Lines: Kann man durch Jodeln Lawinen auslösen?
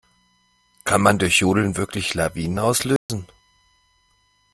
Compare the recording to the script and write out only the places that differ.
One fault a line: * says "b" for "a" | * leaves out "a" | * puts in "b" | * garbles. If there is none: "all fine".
* puts in "wirklich"